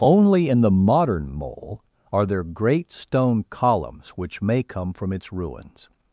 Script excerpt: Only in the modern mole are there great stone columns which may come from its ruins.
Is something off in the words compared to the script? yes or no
no